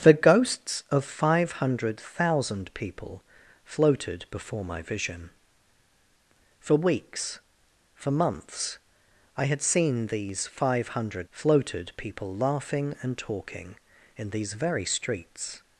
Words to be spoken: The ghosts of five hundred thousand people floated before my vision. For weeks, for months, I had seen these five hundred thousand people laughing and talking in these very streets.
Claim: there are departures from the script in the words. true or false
true